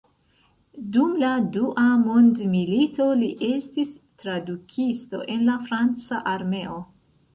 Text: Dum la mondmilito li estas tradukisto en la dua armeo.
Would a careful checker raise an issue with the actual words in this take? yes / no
yes